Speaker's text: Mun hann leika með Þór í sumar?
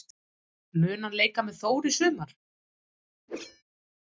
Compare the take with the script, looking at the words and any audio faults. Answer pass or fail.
fail